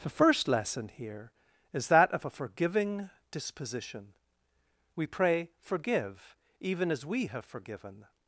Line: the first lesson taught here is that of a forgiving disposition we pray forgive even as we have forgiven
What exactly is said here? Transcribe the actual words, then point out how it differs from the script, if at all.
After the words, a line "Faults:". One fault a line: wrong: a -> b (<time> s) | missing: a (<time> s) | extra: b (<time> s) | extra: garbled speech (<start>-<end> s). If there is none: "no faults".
the first lesson here is that of a forgiving disposition we pray forgive even as we have forgiven
Faults:
missing: taught (0.9 s)